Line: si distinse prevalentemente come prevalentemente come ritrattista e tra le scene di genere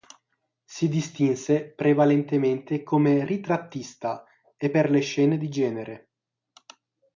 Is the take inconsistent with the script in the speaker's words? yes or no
yes